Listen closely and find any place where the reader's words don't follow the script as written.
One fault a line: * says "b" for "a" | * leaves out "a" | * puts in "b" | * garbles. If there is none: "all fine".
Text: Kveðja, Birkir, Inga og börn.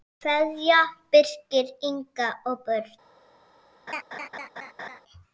all fine